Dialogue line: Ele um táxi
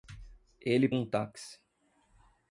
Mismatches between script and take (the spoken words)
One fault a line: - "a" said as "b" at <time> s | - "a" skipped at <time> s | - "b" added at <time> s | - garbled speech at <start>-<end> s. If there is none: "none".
none